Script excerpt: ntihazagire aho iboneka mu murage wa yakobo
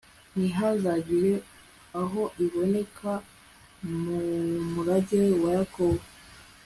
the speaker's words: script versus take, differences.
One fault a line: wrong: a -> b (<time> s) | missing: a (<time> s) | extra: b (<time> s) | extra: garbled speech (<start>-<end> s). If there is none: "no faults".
no faults